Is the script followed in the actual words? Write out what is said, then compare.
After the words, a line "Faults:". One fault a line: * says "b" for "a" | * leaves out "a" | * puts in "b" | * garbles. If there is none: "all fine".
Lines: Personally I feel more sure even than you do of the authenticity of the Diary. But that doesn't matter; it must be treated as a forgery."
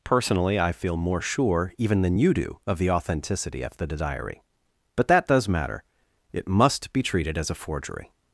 Personally I feel more sure even than you do of the authenticity of the Diary. But that does matter; it must be treated as a forgery."
Faults:
* says "does" for "doesn't"